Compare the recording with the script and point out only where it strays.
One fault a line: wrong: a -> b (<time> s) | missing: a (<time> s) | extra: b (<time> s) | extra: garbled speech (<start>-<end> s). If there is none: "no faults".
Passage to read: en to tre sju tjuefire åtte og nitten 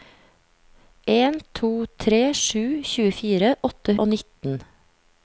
no faults